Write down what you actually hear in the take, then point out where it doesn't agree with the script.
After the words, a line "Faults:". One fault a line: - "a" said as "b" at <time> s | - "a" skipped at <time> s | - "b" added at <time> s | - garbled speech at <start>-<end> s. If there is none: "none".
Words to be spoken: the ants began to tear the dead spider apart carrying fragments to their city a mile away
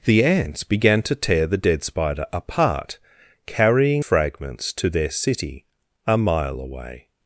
the ants began to tear the dead spider apart carrying fragments to their city a mile away
Faults:
none